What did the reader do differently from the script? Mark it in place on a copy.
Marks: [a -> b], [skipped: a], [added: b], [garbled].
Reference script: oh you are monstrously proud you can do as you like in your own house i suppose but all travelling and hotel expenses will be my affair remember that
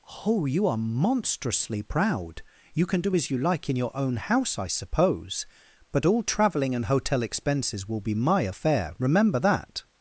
oh you are monstrously proud you can do as you like in your own house i suppose but all travelling and hotel expenses will be my affair remember that